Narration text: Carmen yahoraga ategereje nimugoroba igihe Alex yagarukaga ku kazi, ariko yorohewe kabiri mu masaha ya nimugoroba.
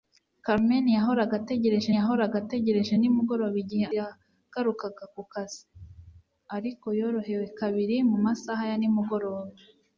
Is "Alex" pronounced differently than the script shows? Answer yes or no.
yes